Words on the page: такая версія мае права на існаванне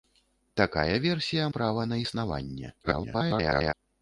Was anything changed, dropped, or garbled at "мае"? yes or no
yes